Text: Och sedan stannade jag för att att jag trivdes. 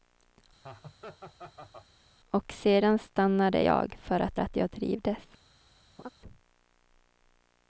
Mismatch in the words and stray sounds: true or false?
true